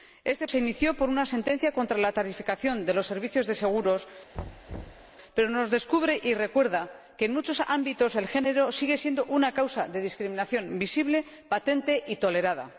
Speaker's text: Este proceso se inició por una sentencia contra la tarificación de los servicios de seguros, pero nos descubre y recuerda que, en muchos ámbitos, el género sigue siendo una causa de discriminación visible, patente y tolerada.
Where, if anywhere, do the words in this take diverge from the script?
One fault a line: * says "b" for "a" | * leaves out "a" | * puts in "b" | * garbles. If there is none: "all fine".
* leaves out "proceso"